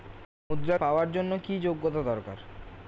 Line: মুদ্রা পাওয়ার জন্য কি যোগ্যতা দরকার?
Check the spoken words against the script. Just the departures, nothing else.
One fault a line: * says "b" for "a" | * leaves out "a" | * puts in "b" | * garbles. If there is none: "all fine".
all fine